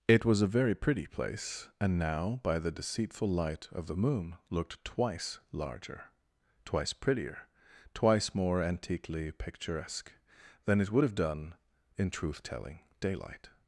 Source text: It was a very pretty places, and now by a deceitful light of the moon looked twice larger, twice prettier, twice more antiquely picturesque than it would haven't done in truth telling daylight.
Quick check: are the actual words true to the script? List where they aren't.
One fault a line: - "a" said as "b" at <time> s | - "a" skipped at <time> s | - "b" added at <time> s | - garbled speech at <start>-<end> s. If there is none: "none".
- "places" said as "place" at 1.1 s
- "a" said as "the" at 2.6 s
- "haven't" said as "have" at 11.0 s